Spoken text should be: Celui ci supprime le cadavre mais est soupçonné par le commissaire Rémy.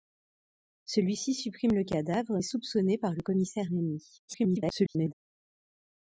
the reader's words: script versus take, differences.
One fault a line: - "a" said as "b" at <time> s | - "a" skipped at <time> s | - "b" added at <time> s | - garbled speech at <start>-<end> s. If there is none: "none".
- "mais" skipped at 2.4 s
- garbled speech at 4.3-5.1 s